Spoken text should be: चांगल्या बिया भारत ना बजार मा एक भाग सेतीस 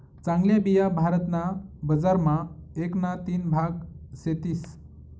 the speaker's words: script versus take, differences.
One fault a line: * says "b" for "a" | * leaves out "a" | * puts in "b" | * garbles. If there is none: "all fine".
* puts in "ना तीन"